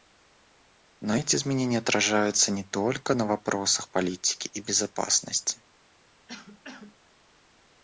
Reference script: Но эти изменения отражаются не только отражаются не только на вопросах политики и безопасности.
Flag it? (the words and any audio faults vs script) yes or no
yes